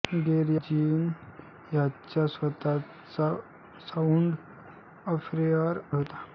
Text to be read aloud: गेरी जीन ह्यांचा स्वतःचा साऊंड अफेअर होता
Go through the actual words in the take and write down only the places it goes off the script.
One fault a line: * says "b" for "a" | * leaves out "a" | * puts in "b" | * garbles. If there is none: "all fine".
all fine